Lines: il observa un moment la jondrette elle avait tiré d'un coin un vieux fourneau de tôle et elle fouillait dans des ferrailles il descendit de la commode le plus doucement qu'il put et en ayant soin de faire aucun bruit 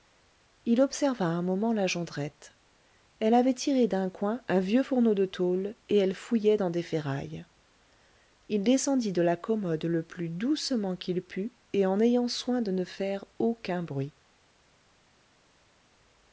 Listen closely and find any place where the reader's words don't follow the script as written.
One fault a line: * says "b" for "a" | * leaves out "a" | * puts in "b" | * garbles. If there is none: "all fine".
* puts in "ne"